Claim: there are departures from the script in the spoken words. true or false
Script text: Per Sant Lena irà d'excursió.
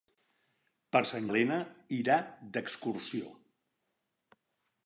false